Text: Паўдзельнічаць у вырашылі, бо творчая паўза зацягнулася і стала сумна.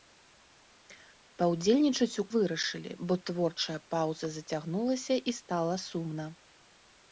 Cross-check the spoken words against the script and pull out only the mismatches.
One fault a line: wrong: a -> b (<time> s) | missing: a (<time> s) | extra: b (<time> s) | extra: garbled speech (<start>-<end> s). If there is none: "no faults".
no faults